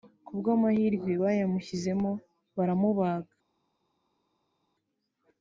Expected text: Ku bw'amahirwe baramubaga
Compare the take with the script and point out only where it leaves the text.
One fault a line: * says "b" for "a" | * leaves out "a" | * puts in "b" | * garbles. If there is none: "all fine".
* puts in "bayamushyizemo"